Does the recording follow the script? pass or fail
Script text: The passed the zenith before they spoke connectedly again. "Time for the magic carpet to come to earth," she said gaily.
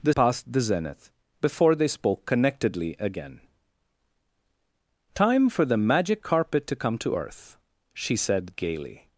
pass